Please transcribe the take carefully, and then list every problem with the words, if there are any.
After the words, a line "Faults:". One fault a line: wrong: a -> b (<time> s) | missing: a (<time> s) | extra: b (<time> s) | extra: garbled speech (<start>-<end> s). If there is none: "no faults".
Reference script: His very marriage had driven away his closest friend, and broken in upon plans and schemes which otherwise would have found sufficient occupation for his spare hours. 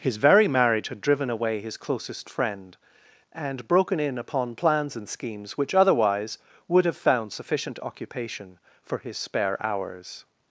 His very marriage had driven away his closest friend, and broken in upon plans and schemes which otherwise would have found sufficient occupation for his spare hours.
Faults:
no faults